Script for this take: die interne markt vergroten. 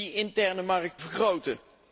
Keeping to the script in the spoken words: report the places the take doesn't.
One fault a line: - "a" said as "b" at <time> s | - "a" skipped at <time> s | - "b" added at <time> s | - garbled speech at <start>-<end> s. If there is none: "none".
none